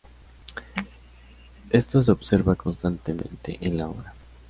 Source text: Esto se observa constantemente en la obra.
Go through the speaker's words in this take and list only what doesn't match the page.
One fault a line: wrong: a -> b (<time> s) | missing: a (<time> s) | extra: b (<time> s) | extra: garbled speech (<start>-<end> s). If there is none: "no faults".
no faults